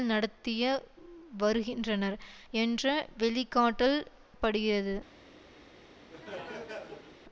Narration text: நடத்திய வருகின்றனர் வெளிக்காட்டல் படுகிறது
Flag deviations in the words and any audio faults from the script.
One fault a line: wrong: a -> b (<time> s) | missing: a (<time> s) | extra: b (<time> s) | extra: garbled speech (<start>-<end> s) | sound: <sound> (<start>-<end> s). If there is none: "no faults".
extra: என்ற (2.5 s)
sound: laugh (6.1-7.2 s)